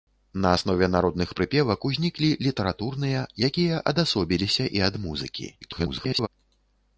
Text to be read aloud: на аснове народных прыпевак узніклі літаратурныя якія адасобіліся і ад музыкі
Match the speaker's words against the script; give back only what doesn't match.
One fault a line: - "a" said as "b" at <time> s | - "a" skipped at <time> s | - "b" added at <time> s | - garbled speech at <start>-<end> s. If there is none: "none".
- garbled speech at 5.6-6.3 s